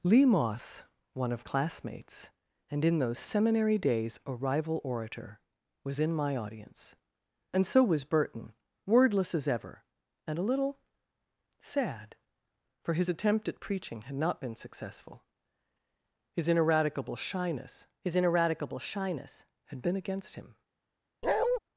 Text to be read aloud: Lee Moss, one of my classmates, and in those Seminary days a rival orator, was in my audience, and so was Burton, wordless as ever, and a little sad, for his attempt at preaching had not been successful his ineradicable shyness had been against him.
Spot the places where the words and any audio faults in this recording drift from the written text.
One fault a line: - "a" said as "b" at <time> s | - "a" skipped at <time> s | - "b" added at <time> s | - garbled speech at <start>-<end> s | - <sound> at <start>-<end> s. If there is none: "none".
- "my" skipped at 1.4 s
- "his ineradicable shyness" added at 18.0 s
- bark at 21.2-21.6 s